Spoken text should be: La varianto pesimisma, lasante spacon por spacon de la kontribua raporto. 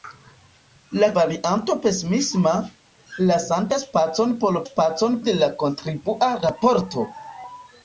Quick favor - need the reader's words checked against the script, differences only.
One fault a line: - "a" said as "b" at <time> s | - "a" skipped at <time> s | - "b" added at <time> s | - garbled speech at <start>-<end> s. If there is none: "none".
none